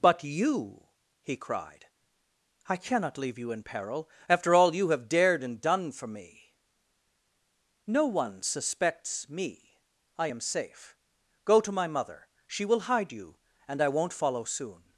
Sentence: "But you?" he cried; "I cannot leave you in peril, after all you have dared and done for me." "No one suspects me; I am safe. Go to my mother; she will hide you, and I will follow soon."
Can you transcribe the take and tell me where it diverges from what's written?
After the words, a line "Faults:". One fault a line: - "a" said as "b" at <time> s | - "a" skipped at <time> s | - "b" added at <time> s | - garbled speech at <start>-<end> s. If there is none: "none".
"But you?" he cried; "I cannot leave you in peril, after all you have dared and done for me." "No one suspects me; I am safe. Go to my mother; she will hide you, and I won't follow soon."
Faults:
- "will" said as "won't" at 13.9 s